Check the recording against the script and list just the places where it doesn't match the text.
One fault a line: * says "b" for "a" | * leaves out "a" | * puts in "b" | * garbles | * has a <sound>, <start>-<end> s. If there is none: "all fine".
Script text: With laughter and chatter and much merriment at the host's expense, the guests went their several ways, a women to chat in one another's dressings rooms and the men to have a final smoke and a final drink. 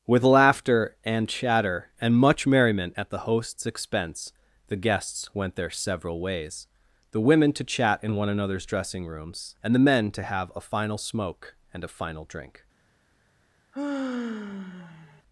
* says "the" for "a"
* says "dressing" for "dressings"
* has a sigh, 13.7-15.2 s